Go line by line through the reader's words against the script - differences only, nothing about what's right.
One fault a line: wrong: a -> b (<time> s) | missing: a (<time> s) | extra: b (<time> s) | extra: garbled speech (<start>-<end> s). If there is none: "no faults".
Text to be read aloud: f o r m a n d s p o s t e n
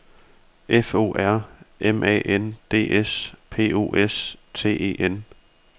no faults